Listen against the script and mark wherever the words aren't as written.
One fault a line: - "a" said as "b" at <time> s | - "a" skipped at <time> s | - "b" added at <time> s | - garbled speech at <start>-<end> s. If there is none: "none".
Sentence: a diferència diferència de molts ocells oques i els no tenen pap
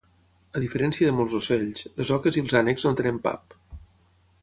- "diferència" skipped at 1.1 s
- "les" added at 2.0 s
- "ànecs" added at 2.6 s